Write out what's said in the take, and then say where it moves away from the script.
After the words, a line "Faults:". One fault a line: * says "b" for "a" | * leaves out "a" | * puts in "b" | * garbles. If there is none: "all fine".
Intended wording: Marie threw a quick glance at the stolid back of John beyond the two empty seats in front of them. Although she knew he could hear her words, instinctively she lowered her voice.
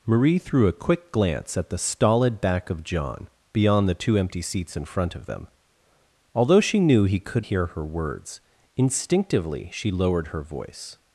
Marie threw a quick glance at the stolid back of John beyond the two empty seats in front of them. Although she knew he could hear her words, instinctively she lowered her voice.
Faults:
all fine